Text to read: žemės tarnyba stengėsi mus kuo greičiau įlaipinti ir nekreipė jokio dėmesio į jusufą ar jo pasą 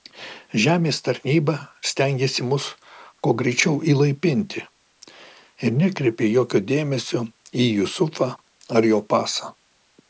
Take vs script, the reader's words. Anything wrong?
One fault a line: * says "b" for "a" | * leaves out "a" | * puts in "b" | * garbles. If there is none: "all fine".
all fine